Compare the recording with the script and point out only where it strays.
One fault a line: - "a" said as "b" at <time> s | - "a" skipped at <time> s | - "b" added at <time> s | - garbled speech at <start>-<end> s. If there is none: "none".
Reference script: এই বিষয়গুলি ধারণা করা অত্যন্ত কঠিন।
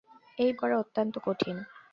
- "বিষয়গুলি ধারণা" skipped at 0.5 s